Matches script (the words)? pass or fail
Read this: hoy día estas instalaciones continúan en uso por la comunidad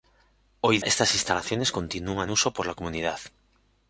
fail